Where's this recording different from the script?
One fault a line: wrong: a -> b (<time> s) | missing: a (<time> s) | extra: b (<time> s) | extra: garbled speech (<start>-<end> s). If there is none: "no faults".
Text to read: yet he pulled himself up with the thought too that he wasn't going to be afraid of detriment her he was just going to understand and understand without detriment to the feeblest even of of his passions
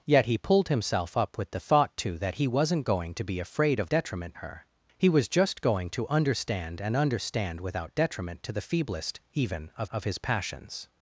no faults